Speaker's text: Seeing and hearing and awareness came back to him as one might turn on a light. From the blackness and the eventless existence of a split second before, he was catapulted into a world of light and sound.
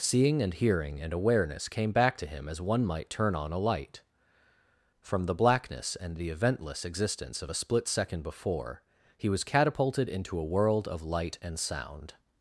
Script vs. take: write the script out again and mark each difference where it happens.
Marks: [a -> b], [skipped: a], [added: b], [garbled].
Seeing and hearing and awareness came back to him as one might turn on a light. From the blackness and the eventless existence of a split second before, he was catapulted into a world of light and sound.